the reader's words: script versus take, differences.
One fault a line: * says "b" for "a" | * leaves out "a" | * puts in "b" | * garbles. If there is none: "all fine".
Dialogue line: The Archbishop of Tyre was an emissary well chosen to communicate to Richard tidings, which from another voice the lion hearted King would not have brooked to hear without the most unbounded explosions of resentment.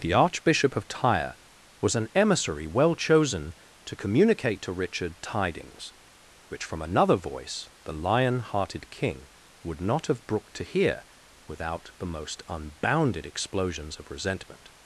all fine